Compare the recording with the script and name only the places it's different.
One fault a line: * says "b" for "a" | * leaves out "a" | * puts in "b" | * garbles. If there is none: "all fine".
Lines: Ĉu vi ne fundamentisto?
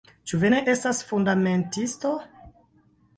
* puts in "estas"